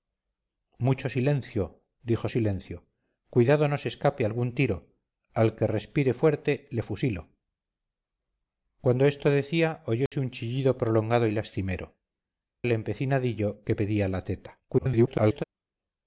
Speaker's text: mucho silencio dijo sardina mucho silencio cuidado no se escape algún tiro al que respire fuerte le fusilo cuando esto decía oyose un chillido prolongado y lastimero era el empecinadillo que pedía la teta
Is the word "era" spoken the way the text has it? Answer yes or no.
no